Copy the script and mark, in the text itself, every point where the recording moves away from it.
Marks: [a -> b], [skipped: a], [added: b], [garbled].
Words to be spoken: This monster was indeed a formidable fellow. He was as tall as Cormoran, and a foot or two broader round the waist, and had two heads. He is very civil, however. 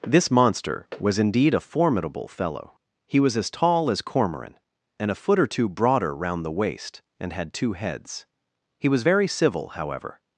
This monster was indeed a formidable fellow. He was as tall as Cormoran, and a foot or two broader round the waist, and had two heads. He [is -> was] very civil, however.